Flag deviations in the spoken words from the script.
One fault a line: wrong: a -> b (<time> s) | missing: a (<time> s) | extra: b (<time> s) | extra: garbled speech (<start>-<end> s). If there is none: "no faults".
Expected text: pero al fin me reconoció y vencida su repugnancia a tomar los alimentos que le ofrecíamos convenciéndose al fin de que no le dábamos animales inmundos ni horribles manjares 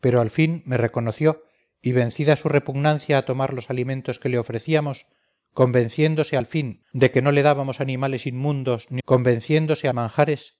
wrong: horribles -> convenciéndose (9.0 s)